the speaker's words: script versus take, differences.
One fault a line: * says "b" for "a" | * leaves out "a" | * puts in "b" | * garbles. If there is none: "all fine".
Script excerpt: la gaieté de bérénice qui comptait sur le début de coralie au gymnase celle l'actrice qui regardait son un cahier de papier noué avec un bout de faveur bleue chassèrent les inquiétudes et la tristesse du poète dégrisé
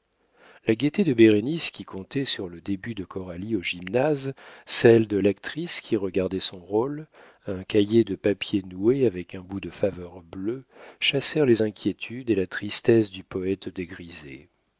* puts in "de"
* puts in "rôle"